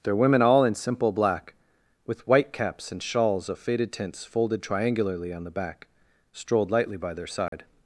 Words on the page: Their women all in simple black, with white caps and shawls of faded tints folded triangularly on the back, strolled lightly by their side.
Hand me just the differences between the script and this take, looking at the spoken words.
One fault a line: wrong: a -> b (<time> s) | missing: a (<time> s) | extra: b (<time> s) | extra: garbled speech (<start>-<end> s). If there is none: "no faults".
no faults